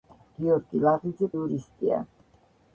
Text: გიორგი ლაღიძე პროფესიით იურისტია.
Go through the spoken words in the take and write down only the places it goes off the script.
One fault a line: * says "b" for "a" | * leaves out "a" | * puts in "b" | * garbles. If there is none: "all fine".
* leaves out "პროფესიით"